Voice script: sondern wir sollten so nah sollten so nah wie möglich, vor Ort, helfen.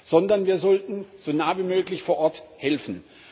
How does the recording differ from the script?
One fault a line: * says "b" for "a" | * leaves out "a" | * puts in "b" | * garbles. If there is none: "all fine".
* leaves out "sollten so nah"